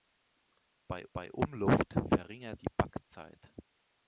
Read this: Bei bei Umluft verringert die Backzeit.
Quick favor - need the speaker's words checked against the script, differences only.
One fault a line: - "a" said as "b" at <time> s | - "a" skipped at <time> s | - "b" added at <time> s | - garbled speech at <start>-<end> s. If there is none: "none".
none